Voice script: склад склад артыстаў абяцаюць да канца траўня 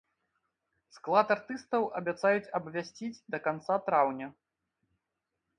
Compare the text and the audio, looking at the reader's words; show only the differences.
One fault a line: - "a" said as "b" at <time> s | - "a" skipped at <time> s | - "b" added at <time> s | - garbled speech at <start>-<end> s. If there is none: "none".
- "склад" skipped at 1.3 s
- "абвясціць" added at 2.6 s